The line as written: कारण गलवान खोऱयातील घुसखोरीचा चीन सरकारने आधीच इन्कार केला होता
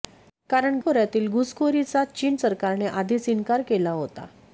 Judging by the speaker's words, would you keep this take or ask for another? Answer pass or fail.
fail